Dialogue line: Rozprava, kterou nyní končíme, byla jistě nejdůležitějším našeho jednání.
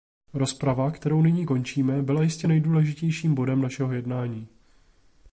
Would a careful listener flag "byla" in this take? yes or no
no